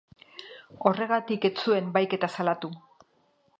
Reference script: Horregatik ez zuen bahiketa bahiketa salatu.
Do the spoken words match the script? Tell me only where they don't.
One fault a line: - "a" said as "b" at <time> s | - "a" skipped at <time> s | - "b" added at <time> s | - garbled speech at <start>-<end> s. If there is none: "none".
- "bahiketa" skipped at 2.3 s